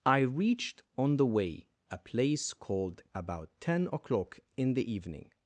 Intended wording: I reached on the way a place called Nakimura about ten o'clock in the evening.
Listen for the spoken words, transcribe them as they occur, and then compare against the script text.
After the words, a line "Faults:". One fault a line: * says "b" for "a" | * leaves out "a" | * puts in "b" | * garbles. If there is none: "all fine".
I reached on the way a place called About ten o'clock in the evening.
Faults:
* leaves out "Nakimura"